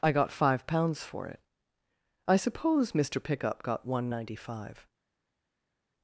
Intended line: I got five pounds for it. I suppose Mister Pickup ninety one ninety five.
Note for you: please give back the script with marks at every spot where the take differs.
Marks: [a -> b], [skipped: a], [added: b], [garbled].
I got five pounds for it. I suppose Mister Pickup [ninety -> got] one ninety five.